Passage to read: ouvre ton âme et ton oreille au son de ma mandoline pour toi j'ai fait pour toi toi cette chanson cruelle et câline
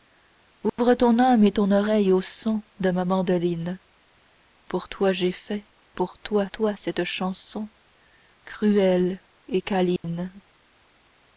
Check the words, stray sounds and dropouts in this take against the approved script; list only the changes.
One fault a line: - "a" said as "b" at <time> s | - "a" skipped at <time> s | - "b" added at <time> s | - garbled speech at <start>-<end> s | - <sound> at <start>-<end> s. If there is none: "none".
- dropout at 0.7-0.8 s
- dropout at 10.0-10.0 s